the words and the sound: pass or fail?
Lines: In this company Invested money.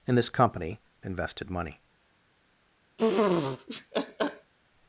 fail